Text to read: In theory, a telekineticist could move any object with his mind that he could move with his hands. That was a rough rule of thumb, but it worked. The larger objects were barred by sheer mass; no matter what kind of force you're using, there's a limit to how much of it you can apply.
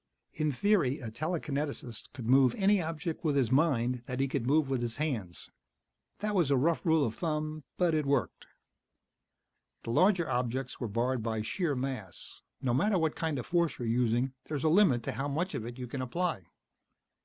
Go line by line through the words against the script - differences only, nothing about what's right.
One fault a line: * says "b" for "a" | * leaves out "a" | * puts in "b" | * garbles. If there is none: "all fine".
all fine